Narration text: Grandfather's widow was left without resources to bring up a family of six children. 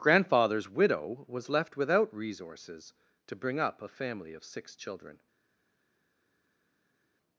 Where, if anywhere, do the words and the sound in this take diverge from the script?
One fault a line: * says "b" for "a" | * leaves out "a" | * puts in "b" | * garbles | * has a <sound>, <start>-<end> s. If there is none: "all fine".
all fine